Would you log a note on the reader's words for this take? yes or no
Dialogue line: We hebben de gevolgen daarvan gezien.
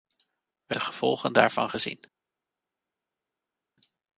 yes